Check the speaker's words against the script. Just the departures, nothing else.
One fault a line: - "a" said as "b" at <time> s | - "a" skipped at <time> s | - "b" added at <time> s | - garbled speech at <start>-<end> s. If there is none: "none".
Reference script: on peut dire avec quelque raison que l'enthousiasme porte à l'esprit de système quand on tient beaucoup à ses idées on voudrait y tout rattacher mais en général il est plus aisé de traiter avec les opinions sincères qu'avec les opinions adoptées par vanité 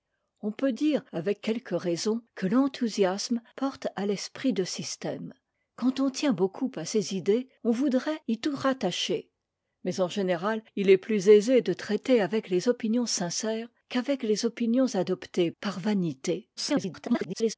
- garbled speech at 16.6-17.5 s